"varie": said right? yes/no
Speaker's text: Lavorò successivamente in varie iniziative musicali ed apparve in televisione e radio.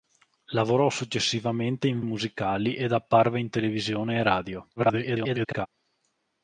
no